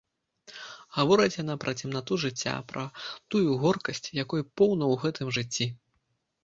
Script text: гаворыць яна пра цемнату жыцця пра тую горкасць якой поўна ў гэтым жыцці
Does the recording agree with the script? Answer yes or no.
yes